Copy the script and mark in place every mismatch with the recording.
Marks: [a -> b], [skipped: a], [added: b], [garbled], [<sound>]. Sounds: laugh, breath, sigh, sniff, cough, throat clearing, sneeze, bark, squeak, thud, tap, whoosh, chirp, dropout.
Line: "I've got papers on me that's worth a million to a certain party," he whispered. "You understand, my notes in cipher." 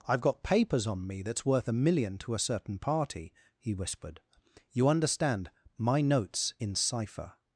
"I've got papers on me that's worth a million to a certain party," he whispered. "You understand, my notes in cipher."